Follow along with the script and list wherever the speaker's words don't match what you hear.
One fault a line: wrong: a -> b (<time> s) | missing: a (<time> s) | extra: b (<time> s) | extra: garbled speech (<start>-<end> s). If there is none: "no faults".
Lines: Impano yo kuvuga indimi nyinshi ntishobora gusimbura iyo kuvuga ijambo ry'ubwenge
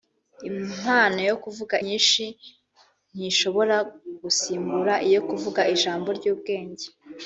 missing: indimi (1.7 s)